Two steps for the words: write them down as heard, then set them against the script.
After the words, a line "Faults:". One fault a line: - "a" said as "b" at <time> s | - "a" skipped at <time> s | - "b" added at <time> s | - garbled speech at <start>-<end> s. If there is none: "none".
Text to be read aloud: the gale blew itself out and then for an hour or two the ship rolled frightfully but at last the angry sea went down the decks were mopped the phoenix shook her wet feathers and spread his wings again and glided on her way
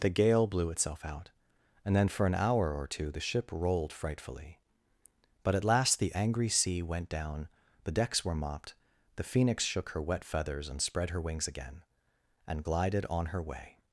the gale blew itself out and then for an hour or two the ship rolled frightfully but at last the angry sea went down the decks were mopped the phoenix shook her wet feathers and spread her wings again and glided on her way
Faults:
- "his" said as "her" at 11.1 s